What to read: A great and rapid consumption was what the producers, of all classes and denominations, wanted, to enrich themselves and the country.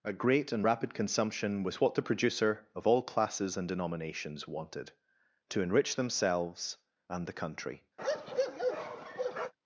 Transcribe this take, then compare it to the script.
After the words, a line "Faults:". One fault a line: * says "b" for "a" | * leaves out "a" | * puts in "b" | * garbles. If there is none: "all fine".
A great and rapid consumption was what the producer, of all classes and denominations, wanted, to enrich themselves and the country.
Faults:
* says "producer" for "producers"